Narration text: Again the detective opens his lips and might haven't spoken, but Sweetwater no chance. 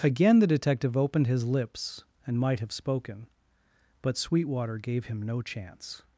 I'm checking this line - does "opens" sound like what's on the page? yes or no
no